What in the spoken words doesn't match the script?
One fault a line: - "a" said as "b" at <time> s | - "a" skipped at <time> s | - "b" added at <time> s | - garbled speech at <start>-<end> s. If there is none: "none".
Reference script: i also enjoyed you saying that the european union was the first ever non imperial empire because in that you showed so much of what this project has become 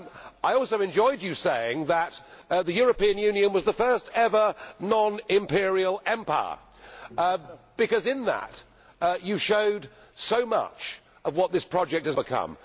none